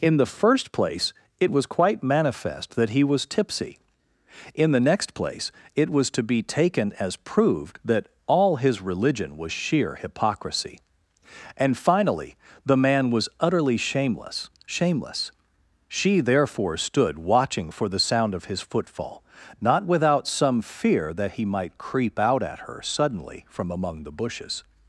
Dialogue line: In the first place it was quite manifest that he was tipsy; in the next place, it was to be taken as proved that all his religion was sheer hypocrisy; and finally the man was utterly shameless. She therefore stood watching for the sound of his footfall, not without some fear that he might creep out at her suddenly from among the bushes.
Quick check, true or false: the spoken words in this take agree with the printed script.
false